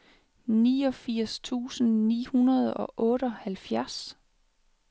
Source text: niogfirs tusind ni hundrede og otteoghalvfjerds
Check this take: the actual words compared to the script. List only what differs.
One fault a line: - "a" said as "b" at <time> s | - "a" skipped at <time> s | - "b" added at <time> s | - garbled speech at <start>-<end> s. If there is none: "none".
none